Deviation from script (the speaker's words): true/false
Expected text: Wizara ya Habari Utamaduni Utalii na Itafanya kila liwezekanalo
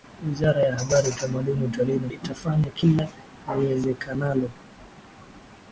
false